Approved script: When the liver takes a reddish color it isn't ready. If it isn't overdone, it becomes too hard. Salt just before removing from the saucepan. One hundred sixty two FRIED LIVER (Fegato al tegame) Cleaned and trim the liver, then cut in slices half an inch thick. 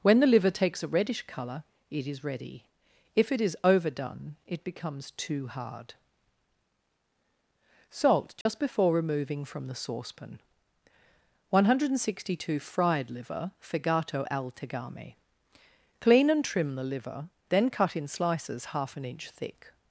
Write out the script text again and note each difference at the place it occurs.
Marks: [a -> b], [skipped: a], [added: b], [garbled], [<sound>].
When the liver takes a reddish color it [isn't -> is] ready. If it [isn't -> is] overdone, it becomes too hard. Salt just [dropout] before removing from the saucepan. One hundred sixty two FRIED LIVER (Fegato al tegame) [Cleaned -> Clean] and trim the liver, then cut in slices half an inch thick.